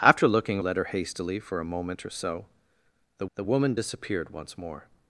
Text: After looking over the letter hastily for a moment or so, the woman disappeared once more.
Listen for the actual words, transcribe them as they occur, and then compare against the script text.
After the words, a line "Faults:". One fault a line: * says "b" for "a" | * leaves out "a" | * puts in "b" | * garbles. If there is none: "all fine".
After looking letter hastily for a moment or so, the the woman disappeared once more.
Faults:
* leaves out "over the"
* puts in "the"